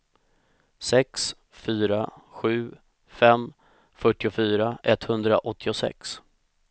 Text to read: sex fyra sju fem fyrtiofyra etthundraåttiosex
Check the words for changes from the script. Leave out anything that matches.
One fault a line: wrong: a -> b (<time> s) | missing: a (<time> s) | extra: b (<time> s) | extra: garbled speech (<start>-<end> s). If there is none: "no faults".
no faults